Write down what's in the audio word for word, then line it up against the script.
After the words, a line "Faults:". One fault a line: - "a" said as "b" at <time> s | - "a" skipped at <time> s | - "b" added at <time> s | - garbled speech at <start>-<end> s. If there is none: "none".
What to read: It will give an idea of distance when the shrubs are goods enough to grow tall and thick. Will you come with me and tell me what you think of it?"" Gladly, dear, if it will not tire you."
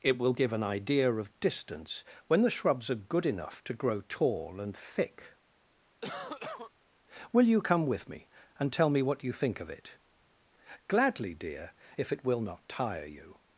It will give an idea of distance when the shrubs are good enough to grow tall and thick. Will you come with me and tell me what you think of it?"" Gladly, dear, if it will not tire you."
Faults:
- "goods" said as "good" at 3.0 s